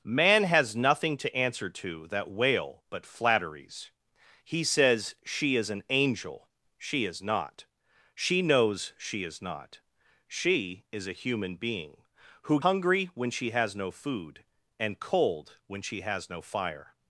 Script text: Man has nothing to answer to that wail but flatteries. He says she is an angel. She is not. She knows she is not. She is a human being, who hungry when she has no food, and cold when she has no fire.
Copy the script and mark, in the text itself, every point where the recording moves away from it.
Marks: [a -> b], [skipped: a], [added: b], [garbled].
Man has nothing to answer to that wail but flatteries. He says she is an angel. She is not. She knows she is not. She is a human being, who hungry when she has no food, and cold when she has no fire.